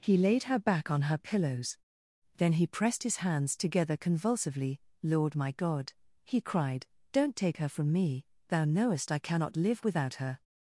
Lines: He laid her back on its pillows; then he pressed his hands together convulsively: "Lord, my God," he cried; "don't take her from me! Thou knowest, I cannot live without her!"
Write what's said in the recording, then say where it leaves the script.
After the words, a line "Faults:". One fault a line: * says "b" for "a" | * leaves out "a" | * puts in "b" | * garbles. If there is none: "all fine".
He laid her back on her pillows; then he pressed his hands together convulsively: "Lord, my God," he cried; "don't take her from me! Thou knowest, I cannot live without her!"
Faults:
* says "her" for "its"